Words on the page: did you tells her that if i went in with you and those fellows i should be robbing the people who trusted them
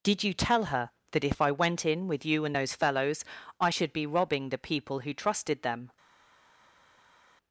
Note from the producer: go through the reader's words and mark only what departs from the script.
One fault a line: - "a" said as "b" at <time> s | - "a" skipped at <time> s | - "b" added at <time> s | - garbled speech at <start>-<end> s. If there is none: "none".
- "tells" said as "tell" at 0.3 s